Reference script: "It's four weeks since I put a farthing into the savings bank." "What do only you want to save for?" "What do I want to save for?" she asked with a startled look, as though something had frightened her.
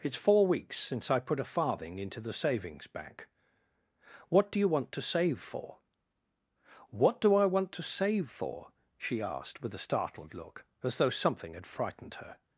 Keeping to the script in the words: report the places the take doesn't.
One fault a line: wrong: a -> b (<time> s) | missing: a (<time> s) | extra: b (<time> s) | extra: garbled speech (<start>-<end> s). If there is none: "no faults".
missing: only (4.6 s)